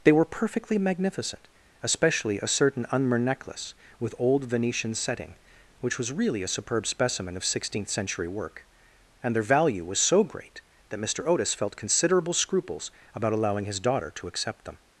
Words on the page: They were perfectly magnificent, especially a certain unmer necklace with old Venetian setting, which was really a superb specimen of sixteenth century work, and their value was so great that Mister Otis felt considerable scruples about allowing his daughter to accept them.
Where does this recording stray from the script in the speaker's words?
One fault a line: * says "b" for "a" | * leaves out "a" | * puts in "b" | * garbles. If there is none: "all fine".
all fine